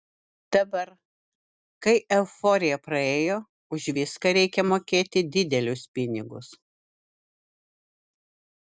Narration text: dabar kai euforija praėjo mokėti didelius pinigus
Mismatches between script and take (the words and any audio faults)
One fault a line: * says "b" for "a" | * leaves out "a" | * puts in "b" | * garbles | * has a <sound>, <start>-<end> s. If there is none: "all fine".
* puts in "už viską reikia"